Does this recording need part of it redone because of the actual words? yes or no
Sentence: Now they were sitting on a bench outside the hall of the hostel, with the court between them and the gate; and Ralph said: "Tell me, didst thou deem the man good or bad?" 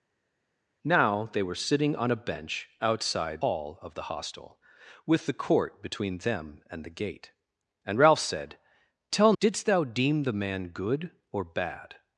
yes